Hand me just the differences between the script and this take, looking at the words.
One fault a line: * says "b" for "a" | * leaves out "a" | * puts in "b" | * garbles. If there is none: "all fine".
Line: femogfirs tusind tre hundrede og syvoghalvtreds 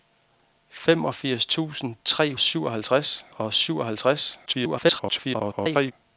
* says "syvoghalvtreds" for "hundrede"
* garbles